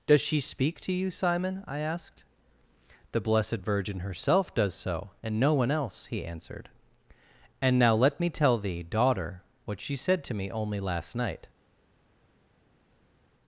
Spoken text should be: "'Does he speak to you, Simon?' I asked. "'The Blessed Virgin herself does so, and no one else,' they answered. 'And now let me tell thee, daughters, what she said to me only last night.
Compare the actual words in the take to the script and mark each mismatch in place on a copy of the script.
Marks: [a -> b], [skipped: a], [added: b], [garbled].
"'Does [he -> she] speak to you, Simon?' I asked. "'The Blessed Virgin herself does so, and no one else,' [they -> he] answered. 'And now let me tell thee, [daughters, -> daughter] what she said to me only last night.